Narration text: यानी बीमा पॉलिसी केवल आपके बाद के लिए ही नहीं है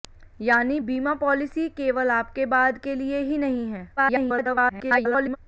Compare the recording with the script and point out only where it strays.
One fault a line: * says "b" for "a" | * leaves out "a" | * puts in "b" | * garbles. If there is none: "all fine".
* garbles